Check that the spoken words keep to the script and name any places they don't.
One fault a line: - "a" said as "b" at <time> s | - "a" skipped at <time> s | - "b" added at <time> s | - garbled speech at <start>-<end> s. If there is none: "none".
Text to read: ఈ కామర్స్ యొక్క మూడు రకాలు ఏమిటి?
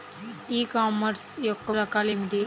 - "మూడు" skipped at 1.7 s